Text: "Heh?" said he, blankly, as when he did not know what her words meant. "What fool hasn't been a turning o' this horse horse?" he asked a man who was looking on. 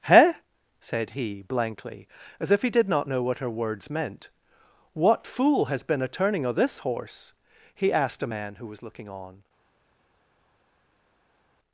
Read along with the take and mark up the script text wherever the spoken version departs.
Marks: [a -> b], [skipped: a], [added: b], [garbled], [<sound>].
"Heh?" said he, blankly, as [when -> if] he did not know what her words meant. "What fool [hasn't -> has] been a turning o' this horse [skipped: horse?"] he asked a man who was looking on.